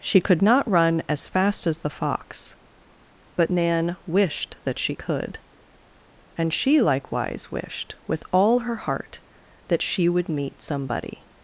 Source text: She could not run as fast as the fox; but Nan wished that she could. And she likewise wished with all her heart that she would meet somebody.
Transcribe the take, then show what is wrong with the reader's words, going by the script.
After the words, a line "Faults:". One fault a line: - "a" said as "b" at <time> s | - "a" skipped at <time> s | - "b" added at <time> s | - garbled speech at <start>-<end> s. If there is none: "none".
She could not run as fast as the fox; but Nan wished that she could. And she likewise wished with all her heart that she would meet somebody.
Faults:
none